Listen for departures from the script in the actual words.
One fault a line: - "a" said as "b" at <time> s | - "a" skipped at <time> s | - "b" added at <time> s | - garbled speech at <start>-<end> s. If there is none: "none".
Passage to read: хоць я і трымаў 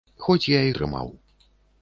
none